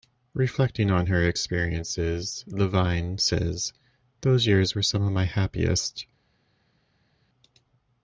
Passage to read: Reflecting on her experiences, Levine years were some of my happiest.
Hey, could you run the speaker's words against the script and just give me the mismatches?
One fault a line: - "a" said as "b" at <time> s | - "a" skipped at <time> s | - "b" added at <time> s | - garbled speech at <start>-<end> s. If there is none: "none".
- "says those" added at 3.2 s